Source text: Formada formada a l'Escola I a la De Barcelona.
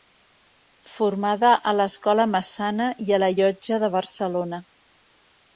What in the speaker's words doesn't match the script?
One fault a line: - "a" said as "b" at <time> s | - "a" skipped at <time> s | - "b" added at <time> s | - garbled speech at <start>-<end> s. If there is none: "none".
- "formada" skipped at 1.5 s
- "Massana" added at 2.4 s
- "Llotja" added at 3.4 s